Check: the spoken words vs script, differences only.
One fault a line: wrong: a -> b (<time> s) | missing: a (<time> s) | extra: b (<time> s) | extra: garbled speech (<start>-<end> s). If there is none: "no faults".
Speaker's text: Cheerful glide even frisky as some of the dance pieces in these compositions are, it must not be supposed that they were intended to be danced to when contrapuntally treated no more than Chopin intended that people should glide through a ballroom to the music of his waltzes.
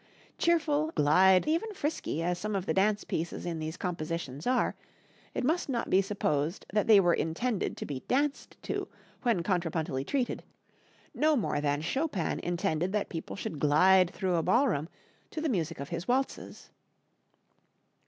no faults